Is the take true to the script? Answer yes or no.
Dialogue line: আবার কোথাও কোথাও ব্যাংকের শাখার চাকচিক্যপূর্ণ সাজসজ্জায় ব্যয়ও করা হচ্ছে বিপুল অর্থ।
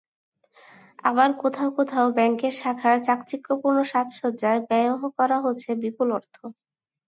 yes